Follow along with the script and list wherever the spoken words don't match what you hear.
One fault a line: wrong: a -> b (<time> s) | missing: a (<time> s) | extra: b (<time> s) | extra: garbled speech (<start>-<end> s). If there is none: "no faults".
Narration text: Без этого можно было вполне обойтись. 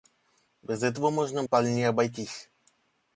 missing: было (1.4 s)